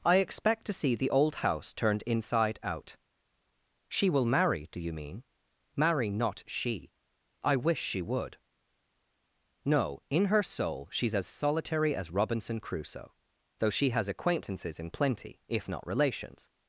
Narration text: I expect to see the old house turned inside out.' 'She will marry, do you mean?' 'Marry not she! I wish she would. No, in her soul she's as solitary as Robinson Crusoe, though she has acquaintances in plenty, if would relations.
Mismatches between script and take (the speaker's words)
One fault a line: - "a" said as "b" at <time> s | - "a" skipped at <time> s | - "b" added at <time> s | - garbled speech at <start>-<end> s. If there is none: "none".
- "would" said as "not" at 15.7 s